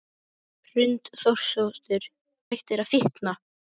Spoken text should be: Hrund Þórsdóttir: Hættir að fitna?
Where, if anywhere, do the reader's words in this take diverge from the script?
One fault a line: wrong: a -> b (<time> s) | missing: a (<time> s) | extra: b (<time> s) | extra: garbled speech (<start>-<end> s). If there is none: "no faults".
no faults